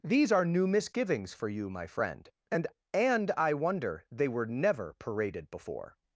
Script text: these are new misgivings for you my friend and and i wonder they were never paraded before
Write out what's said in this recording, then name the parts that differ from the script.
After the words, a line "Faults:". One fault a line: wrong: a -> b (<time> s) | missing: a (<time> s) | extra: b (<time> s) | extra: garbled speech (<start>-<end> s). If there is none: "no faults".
these are new misgivings for you my friend and and i wonder they were never paraded before
Faults:
no faults